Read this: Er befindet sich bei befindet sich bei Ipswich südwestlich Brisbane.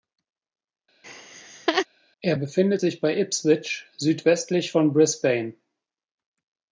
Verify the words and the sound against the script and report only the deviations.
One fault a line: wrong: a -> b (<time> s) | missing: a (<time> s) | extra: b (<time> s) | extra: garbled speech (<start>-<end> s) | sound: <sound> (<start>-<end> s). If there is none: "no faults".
sound: laugh (1.0-1.9 s)
missing: befindet sich bei (3.2 s)
extra: von (4.7 s)